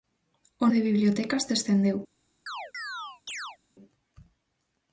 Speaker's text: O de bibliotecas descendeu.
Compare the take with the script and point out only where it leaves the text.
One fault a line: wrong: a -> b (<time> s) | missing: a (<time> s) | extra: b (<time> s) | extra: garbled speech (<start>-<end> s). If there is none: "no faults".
no faults